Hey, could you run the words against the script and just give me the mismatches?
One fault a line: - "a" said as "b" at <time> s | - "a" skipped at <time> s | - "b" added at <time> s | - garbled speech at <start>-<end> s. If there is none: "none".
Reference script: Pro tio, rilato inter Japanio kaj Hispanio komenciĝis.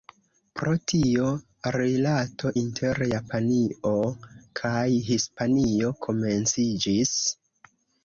none